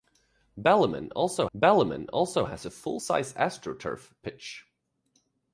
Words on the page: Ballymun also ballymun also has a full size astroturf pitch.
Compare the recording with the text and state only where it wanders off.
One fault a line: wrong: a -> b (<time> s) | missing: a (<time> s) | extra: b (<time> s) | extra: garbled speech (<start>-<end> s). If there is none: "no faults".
no faults